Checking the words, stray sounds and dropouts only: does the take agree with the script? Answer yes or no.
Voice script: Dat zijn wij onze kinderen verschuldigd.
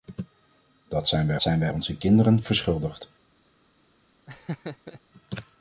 no